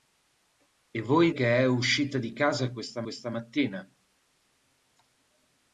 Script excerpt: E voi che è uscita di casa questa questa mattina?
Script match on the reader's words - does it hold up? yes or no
yes